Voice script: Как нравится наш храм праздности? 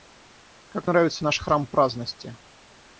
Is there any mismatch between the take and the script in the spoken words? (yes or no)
no